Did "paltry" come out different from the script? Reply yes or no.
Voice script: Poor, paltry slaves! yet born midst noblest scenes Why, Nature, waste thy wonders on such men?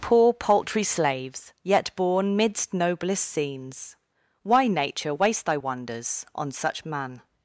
no